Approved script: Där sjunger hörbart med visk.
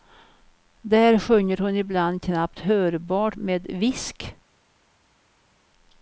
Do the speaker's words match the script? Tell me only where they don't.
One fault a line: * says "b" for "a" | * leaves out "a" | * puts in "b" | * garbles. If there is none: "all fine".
* puts in "hon ibland knappt"